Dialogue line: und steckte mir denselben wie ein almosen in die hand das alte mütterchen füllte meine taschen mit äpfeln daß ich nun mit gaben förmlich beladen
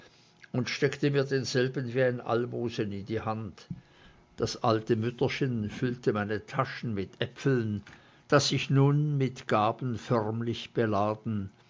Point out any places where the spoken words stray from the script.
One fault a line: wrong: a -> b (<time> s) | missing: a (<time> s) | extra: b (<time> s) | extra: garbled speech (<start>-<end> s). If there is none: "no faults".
no faults